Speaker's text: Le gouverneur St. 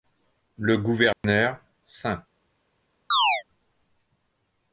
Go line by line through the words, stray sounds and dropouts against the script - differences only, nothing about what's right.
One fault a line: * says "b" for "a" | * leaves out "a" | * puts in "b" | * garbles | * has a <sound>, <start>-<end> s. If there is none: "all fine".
* has a dropout, 1.1-1.2 s
* has a chirp, 3.1-3.4 s